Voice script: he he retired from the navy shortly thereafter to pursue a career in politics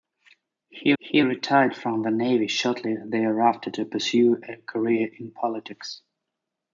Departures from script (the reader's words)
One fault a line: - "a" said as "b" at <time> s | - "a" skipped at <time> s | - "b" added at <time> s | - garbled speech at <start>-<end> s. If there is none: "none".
none